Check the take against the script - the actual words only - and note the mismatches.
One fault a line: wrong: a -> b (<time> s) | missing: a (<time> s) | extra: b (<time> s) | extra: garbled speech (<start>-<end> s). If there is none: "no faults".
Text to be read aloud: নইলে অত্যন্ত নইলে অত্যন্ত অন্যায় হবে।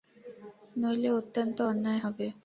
missing: নইলে অত্যন্ত (1.6 s)